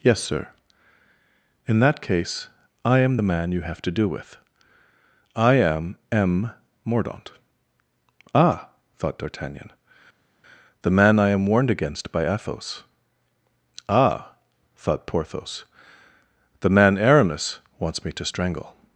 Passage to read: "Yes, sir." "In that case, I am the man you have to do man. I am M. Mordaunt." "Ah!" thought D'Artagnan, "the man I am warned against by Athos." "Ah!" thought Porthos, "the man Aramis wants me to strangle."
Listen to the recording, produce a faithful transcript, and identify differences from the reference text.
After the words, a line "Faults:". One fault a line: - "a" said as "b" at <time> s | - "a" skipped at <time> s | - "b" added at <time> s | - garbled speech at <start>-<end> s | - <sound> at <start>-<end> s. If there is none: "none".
"Yes, sir." "In that case, I am the man you have to do with. I am M. Mordaunt." "Ah!" thought D'Artagnan, "the man I am warned against by Athos." "Ah!" thought Porthos, "the man Aramis wants me to strangle."
Faults:
- "man" said as "with" at 4.1 s